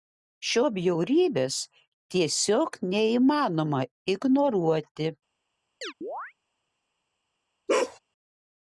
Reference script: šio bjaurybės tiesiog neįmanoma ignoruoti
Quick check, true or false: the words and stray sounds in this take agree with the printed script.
false